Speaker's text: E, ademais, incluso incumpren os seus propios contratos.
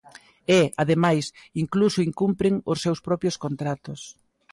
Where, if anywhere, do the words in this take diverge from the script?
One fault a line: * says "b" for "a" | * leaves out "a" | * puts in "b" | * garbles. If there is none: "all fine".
all fine